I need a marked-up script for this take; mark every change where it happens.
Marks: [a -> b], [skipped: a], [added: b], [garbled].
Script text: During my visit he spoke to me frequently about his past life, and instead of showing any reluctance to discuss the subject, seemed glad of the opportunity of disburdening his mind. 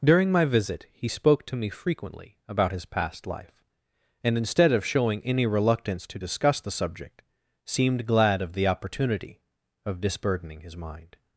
During my visit he spoke to me frequently about his past life, and instead of showing any reluctance to discuss the subject, seemed glad of the opportunity of disburdening his mind.